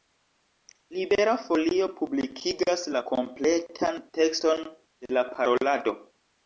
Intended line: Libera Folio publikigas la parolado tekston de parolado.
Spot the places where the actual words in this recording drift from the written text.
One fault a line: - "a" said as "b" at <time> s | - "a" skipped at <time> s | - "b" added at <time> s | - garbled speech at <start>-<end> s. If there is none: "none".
- "parolado" said as "kompletan" at 3.1 s
- "la" added at 5.2 s